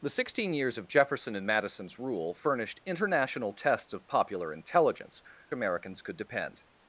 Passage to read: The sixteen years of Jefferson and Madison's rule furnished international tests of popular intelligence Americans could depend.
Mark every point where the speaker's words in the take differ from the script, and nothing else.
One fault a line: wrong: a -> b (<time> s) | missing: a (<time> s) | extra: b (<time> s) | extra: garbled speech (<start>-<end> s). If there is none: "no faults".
no faults